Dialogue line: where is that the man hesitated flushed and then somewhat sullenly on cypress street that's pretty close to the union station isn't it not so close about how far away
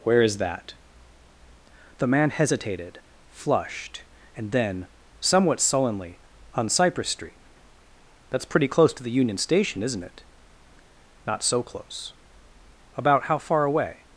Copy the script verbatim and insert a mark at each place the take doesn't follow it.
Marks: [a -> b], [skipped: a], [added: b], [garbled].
where is that the man hesitated flushed and then somewhat sullenly on cypress street that's pretty close to the union station isn't it not so close about how far away